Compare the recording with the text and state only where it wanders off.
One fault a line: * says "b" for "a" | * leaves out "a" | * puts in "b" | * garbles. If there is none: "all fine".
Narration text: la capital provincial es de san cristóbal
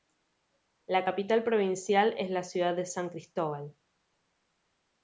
* puts in "la ciudad"